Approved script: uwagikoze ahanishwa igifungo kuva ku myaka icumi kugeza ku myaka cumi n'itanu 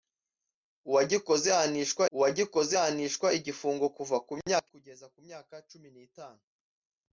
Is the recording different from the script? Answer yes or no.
yes